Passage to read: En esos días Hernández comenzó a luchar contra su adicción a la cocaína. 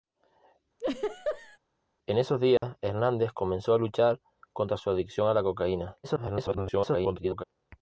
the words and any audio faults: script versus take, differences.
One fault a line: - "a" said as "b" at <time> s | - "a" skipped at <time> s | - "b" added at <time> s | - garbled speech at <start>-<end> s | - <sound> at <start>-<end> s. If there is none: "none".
- laugh at 0.8-1.6 s
- dropout at 2.6-2.6 s
- garbled speech at 6.0-7.4 s